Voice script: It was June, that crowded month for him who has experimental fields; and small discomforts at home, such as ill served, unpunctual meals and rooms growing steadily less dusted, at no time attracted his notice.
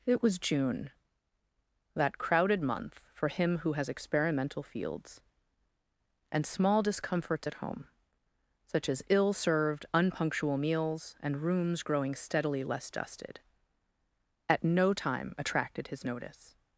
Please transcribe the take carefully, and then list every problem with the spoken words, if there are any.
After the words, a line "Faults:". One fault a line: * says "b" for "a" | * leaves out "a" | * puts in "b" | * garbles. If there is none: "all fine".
It was June, that crowded month for him who has experimental fields; and small discomforts at home, such as ill served, unpunctual meals and rooms growing steadily less dusted, at no time attracted his notice.
Faults:
all fine